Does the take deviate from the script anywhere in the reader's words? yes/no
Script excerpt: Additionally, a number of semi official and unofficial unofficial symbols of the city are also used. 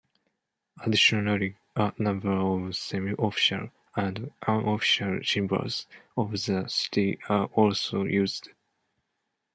yes